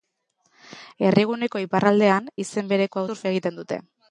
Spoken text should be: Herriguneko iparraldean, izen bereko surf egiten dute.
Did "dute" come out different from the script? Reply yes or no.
no